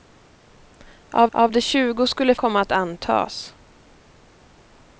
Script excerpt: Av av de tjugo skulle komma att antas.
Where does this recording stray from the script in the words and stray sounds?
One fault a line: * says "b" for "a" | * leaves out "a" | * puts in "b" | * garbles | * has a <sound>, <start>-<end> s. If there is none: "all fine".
all fine